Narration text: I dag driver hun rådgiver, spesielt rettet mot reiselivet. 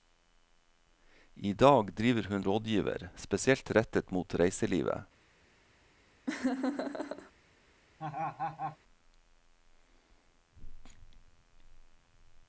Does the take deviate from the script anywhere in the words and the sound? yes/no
yes